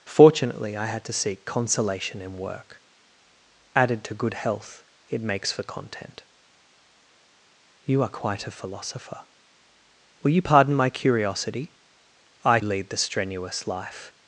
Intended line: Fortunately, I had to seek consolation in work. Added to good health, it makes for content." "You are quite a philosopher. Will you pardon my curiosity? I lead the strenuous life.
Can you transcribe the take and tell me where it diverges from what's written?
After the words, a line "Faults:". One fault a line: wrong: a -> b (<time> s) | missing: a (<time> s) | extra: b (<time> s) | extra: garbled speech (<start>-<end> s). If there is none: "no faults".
Fortunately, I had to seek consolation in work. Added to good health, it makes for content." "You are quite a philosopher. Will you pardon my curiosity? I lead the strenuous life.
Faults:
no faults